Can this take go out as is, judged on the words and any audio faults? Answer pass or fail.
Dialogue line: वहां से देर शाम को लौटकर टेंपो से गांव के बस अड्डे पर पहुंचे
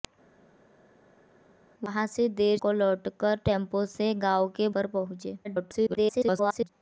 fail